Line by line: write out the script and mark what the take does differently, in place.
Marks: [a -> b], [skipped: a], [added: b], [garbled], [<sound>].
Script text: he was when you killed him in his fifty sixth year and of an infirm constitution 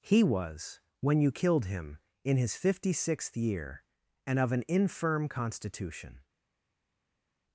he was when you killed him in his fifty sixth year and of an infirm constitution